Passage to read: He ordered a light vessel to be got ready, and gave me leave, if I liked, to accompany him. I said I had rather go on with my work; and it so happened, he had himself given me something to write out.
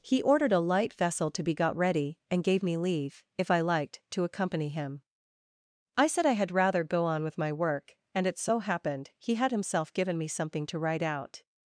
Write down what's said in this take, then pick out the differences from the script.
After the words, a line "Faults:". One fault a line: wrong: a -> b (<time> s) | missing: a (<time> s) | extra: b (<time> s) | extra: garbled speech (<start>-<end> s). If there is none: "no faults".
He ordered a light vessel to be got ready, and gave me leave, if I liked, to accompany him. I said I had rather go on with my work; and it so happened, he had himself given me something to write out.
Faults:
no faults